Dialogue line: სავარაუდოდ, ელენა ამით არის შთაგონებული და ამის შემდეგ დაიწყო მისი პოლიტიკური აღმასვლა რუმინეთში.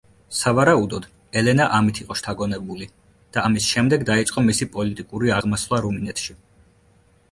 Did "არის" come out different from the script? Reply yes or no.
yes